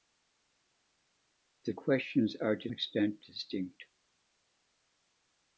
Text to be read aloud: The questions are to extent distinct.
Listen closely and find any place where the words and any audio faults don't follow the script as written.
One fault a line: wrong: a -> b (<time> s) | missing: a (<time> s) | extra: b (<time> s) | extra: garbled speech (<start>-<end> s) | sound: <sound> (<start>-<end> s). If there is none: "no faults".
no faults